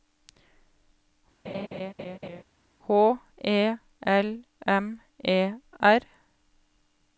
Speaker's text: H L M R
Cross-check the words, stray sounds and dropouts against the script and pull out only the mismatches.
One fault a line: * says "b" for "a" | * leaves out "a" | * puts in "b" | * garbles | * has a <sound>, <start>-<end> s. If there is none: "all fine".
* has a laugh, 1.4-2.4 s
* puts in "E"
* puts in "E"